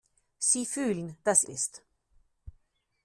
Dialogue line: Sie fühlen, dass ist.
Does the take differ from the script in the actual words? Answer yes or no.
no